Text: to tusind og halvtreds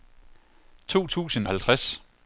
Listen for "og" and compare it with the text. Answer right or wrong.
wrong